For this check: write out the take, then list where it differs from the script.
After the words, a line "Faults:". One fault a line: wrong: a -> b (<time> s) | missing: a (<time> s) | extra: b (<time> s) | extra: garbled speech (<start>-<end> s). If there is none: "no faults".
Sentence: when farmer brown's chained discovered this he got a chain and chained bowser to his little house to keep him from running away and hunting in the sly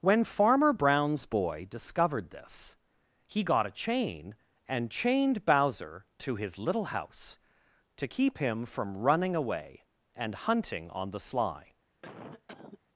when farmer brown's boy discovered this he got a chain and chained bowser to his little house to keep him from running away and hunting on the sly
Faults:
wrong: chained -> boy (1.3 s)
wrong: in -> on (10.9 s)